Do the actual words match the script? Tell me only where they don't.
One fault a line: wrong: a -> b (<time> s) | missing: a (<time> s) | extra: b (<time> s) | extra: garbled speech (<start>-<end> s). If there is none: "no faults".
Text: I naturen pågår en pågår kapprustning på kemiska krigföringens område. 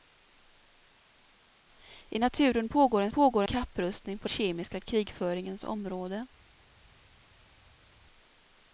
no faults